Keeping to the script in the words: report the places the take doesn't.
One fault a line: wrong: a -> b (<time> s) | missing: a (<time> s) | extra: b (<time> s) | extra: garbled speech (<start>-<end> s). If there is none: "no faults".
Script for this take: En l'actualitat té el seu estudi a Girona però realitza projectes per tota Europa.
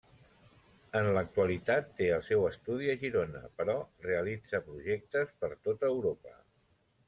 no faults